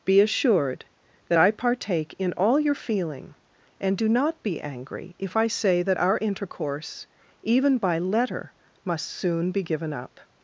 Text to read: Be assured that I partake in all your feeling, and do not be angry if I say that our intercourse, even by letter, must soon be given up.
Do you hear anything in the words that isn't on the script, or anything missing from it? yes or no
no